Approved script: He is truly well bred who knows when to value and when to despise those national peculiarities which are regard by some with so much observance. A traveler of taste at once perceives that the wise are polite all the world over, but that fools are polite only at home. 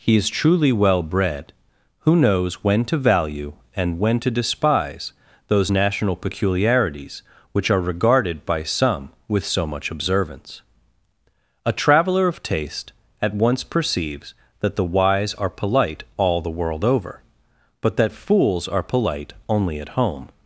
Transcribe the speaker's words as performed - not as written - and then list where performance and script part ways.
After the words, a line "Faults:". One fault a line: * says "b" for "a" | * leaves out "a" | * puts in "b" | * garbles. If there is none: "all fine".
He is truly well bred who knows when to value and when to despise those national peculiarities which are regarded by some with so much observance. A traveler of taste at once perceives that the wise are polite all the world over, but that fools are polite only at home.
Faults:
* says "regarded" for "regard"